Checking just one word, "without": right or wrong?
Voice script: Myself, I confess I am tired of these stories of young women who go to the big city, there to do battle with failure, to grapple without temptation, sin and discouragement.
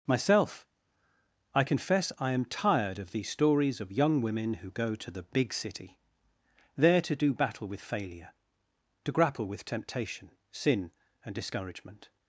wrong